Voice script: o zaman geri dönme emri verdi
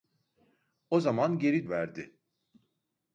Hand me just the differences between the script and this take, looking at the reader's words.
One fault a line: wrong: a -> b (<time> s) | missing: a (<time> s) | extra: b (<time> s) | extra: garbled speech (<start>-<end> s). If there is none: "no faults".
missing: dönme emri (1.7 s)